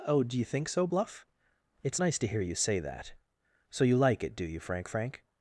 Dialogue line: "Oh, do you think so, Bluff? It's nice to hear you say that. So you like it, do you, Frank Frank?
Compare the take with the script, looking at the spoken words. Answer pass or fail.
pass